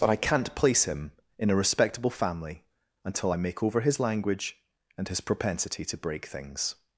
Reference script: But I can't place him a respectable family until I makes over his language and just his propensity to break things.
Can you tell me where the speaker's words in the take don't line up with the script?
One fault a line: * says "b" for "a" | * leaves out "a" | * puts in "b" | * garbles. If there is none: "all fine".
* puts in "in"
* says "make" for "makes"
* leaves out "just"